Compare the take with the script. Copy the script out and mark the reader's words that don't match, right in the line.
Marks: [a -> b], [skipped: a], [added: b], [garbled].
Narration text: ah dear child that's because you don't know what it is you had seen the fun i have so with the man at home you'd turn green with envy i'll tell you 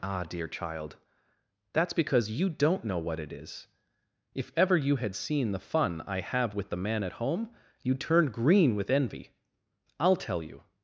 ah dear child that's because you don't know what it is [added: if ever] you had seen the fun i have [skipped: so] with the man at home you'd turn green with envy i'll tell you